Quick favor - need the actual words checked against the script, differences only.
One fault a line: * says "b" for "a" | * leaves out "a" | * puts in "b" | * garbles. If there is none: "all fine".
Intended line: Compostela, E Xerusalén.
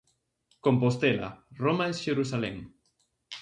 * puts in "Roma"